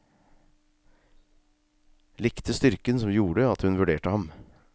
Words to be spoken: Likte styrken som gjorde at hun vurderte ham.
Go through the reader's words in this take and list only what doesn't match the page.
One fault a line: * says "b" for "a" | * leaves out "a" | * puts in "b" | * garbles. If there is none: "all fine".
all fine